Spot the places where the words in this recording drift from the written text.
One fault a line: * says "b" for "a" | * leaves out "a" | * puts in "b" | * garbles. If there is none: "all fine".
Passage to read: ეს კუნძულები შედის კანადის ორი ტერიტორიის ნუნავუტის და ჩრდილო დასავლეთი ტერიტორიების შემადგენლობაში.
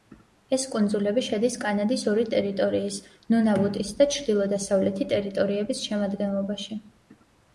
all fine